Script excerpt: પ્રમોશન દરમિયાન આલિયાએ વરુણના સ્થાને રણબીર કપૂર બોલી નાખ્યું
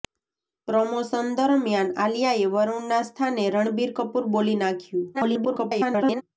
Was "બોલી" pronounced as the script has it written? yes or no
yes